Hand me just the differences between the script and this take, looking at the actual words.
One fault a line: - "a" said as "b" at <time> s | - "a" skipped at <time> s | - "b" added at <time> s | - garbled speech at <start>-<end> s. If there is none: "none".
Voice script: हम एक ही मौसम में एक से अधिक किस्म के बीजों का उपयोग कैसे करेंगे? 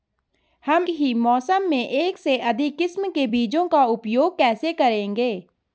- "एक" skipped at 0.9 s